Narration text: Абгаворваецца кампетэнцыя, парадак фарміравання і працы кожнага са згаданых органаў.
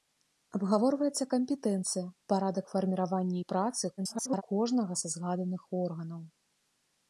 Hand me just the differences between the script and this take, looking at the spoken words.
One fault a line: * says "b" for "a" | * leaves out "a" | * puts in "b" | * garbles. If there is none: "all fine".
* garbles